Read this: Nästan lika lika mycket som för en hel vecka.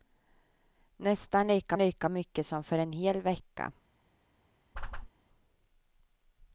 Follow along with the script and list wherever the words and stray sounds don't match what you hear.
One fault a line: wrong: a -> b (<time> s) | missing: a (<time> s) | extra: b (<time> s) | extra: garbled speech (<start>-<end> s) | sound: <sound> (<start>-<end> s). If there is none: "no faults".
sound: whoosh (4.7-5.1 s)